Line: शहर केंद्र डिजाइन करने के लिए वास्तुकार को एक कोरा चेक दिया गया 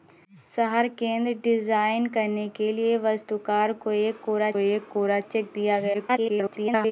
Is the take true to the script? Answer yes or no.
no